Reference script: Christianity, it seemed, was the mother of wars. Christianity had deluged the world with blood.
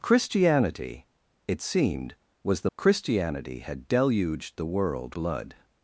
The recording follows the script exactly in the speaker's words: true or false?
false